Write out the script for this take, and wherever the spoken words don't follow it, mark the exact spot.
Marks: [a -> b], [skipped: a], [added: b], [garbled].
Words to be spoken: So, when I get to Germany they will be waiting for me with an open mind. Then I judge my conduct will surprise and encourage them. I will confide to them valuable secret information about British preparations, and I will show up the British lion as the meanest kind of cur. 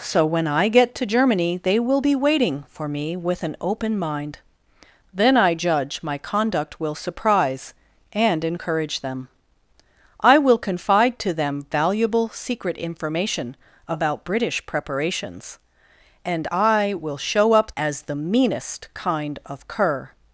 So, when I get to Germany they will be waiting for me with an open mind. Then I judge my conduct will surprise and encourage them. I will confide to them valuable secret information about British preparations, and I will show up [skipped: the British lion] as the meanest kind of cur.